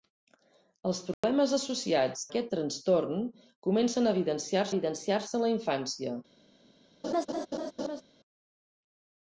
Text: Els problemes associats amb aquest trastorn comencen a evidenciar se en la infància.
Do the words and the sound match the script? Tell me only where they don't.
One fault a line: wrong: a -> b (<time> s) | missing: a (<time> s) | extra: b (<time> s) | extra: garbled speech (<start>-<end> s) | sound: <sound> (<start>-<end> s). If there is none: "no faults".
sound: dropout (1.1-1.2 s)
missing: amb (2.2 s)
extra: evidenciar (4.7 s)
sound: laugh (7.0-8.0 s)